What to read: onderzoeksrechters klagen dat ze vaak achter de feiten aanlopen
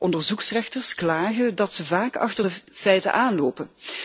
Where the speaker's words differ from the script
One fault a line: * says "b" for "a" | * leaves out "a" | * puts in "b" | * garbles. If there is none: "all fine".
all fine